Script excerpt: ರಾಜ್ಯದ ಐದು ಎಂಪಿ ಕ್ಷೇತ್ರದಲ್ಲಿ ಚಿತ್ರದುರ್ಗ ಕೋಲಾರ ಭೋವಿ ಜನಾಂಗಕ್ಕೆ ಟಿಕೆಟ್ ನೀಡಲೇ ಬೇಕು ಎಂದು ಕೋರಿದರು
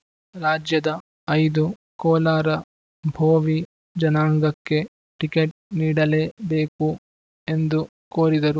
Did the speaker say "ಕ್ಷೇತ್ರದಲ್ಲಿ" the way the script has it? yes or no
no